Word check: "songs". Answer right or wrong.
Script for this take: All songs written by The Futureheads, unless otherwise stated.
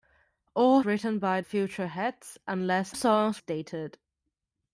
wrong